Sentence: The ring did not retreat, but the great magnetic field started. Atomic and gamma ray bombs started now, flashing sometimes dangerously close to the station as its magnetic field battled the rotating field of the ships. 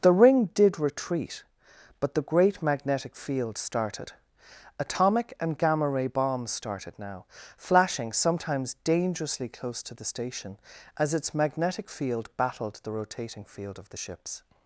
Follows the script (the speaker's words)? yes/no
no